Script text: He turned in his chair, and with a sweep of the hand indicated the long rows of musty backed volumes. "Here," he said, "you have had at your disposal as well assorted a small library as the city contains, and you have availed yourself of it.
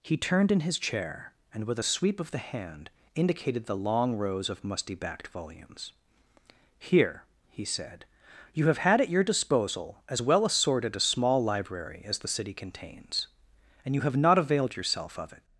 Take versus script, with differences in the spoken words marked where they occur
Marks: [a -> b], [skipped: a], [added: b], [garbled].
He turned in his chair, and with a sweep of the hand indicated the long rows of musty backed volumes. "Here," he said, "you have had at your disposal as well assorted a small library as the city contains, and you have [added: not] availed yourself of it.